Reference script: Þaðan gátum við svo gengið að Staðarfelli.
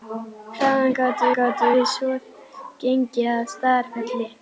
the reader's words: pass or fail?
fail